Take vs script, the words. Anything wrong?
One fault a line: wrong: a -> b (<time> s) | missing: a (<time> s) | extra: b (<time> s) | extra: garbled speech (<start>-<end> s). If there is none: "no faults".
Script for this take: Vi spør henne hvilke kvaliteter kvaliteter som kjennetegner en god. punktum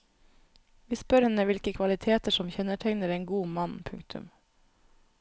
missing: kvaliteter (2.4 s)
extra: mann (3.6 s)